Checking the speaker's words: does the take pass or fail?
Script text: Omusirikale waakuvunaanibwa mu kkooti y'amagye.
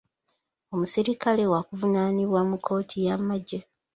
pass